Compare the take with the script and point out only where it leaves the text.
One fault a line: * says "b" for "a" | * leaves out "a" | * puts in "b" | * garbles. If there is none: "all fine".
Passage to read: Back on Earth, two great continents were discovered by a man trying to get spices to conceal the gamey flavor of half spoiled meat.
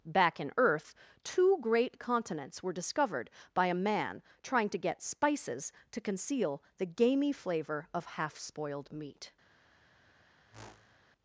* says "in" for "on"